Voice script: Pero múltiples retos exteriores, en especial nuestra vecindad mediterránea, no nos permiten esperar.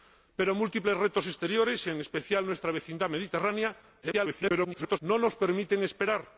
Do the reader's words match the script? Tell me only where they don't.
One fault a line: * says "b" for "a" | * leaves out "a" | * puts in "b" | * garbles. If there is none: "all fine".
* garbles